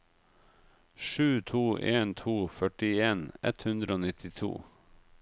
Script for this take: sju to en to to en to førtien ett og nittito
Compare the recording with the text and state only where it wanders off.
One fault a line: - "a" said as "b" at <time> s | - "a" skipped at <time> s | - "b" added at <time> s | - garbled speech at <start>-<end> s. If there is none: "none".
- "to en to" skipped at 2.3 s
- "hundre" added at 3.7 s